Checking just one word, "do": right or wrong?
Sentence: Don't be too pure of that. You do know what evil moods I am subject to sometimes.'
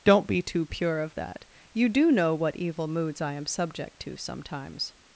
right